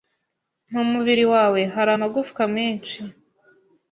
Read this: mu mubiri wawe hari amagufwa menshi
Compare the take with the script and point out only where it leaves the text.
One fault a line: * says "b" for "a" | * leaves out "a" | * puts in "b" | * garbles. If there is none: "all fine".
all fine